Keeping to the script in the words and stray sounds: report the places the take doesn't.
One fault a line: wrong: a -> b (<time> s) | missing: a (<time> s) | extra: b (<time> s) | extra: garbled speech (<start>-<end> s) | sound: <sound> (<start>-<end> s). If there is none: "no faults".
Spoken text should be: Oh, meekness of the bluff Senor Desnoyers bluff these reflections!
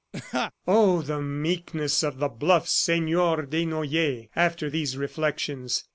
sound: laugh (0.1-0.5 s)
extra: the (1.0 s)
wrong: bluff -> after (4.3 s)